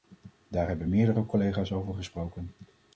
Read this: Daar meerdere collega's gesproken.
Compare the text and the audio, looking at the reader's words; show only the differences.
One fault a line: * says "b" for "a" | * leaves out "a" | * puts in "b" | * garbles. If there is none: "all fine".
* puts in "hebben"
* puts in "over"